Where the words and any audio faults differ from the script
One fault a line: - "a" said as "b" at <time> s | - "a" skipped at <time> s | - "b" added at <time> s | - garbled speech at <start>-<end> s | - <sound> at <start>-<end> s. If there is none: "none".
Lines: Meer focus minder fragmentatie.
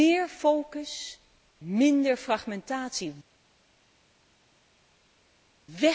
none